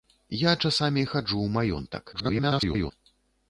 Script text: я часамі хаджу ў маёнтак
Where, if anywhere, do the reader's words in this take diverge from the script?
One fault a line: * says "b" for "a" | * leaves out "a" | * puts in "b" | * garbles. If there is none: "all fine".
* garbles